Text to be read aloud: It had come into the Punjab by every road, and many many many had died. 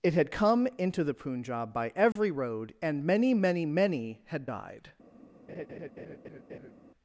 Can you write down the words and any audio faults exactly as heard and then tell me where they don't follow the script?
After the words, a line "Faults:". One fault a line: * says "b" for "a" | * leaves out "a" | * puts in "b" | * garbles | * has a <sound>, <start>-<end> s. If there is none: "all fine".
It had come into the Punjab by every road, and many many many had died.
Faults:
* has a dropout, 2.1-2.2 s
* has a laugh, 5.5-6.7 s